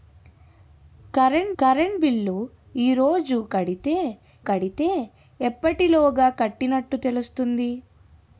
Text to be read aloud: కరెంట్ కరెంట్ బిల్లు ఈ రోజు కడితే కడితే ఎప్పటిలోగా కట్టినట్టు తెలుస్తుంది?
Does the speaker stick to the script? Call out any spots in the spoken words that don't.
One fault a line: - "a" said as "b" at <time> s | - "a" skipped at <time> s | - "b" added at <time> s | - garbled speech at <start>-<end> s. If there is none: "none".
none